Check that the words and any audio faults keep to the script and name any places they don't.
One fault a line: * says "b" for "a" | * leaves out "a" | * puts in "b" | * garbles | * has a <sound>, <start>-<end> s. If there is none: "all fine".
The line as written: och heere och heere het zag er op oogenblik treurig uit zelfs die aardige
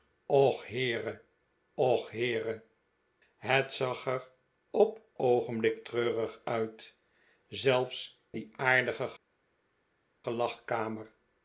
all fine